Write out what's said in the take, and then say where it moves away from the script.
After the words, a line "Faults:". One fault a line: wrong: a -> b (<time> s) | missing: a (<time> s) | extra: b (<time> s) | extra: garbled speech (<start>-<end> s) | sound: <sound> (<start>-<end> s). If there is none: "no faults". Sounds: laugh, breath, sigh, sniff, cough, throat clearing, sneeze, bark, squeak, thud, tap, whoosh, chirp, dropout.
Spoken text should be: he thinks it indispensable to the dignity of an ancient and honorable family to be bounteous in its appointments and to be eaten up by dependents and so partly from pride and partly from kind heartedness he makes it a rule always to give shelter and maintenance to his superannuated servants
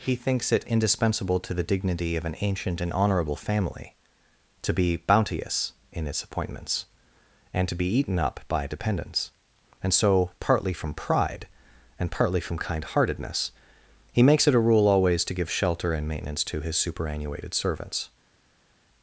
he thinks it indispensable to the dignity of an ancient and honorable family to be bounteous in its appointments and to be eaten up by dependents and so partly from pride and partly from kind heartedness he makes it a rule always to give shelter and maintenance to his superannuated servants
Faults:
no faults